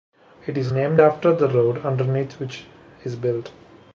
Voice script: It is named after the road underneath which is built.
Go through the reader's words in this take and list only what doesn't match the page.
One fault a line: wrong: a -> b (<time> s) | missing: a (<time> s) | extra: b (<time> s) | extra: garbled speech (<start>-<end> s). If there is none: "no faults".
no faults